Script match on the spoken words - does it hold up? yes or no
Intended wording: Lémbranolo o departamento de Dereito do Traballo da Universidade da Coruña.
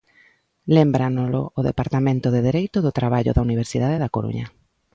yes